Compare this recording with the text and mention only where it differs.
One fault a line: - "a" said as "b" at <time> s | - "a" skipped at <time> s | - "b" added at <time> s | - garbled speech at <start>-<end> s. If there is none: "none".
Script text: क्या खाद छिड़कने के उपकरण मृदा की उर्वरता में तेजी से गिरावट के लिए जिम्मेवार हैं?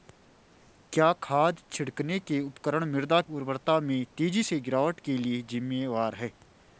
- "की" skipped at 3.2 s